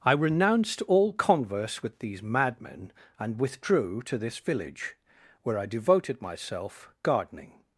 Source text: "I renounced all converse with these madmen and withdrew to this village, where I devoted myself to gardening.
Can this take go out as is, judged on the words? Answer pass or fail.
fail